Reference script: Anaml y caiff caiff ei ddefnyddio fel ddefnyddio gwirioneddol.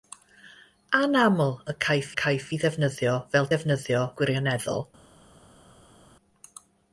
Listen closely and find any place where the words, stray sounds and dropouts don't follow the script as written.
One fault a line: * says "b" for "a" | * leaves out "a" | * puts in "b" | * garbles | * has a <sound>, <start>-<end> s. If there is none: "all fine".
all fine